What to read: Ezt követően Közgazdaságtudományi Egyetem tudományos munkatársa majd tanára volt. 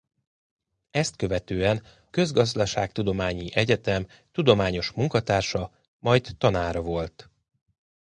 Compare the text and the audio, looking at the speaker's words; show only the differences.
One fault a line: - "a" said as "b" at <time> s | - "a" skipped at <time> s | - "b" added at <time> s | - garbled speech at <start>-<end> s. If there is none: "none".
none